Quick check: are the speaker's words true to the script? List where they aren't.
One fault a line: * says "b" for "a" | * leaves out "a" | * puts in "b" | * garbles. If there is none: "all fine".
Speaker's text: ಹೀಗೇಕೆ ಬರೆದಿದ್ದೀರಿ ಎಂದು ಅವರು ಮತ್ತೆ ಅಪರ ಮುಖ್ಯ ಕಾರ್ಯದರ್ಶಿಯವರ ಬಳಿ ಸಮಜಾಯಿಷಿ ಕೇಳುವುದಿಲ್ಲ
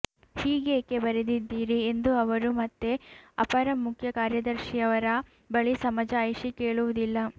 all fine